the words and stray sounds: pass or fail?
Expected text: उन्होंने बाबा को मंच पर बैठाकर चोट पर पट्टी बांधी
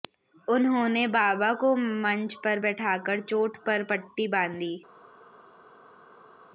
pass